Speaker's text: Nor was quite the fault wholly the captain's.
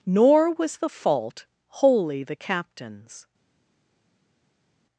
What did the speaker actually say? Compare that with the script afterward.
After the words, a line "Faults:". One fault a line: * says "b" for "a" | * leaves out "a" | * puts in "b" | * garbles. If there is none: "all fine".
Nor was the fault wholly the captain's.
Faults:
* leaves out "quite"